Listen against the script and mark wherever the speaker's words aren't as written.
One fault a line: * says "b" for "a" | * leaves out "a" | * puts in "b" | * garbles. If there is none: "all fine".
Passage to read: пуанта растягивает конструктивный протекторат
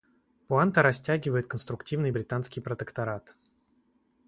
* puts in "британский"